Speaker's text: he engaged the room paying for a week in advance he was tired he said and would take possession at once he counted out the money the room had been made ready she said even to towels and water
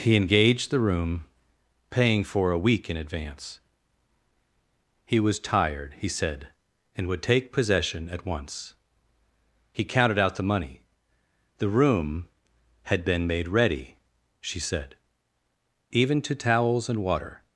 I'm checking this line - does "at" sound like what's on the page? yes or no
yes